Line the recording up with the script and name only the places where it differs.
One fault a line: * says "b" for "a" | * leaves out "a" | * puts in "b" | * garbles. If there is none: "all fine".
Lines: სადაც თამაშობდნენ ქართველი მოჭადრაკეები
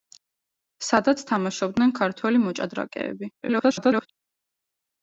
* garbles